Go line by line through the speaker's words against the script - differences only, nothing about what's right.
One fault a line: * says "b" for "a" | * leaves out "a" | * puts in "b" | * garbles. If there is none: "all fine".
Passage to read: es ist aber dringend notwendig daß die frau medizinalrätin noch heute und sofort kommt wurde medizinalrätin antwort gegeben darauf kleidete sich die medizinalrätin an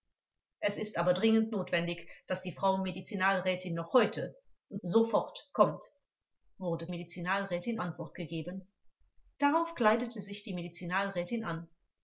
all fine